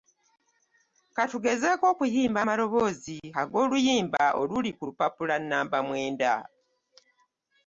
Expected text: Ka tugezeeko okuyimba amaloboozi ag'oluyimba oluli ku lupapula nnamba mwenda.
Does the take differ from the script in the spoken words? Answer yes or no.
no